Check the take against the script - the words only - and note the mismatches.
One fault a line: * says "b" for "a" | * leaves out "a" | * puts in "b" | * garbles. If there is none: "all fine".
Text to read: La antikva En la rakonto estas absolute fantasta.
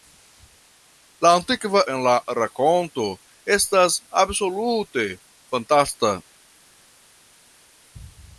all fine